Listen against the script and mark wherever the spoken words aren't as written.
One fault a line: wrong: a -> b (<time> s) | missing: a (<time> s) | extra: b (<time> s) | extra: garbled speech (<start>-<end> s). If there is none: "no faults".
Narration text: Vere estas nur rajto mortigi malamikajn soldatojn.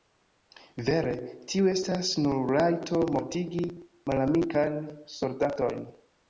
extra: tiu (1.5 s)